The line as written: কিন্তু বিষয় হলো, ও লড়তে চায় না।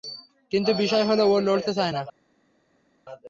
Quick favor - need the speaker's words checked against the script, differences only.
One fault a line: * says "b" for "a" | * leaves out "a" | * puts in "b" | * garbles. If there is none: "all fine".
all fine